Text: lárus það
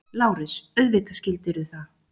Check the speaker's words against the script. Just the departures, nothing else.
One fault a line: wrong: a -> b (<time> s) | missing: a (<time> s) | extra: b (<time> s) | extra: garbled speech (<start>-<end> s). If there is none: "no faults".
extra: auðvitað skildirðu (0.8 s)